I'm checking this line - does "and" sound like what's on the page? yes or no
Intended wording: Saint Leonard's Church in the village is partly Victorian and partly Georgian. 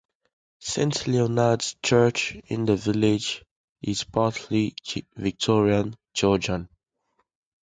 no